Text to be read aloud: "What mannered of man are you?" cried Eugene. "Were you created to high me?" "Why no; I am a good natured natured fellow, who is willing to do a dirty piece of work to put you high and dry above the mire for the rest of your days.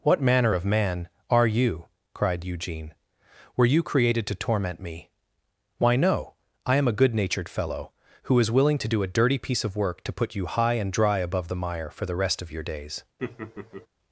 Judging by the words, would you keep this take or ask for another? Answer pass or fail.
fail